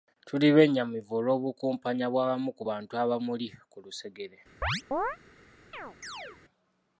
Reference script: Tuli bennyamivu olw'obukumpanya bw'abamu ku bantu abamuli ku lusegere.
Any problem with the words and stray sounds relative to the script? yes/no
yes